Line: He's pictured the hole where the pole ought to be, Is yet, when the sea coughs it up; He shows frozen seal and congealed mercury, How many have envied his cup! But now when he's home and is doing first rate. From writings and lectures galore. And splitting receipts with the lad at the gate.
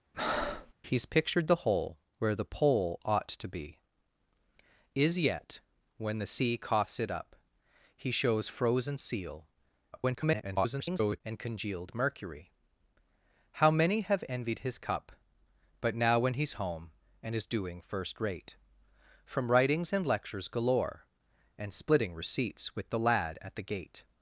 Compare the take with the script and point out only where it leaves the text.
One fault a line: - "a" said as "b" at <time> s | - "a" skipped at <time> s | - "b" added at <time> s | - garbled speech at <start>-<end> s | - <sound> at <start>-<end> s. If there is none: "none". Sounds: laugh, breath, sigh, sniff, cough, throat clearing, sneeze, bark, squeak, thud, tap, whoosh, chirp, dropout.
- breath at 0.1-0.7 s
- garbled speech at 9.9-11.2 s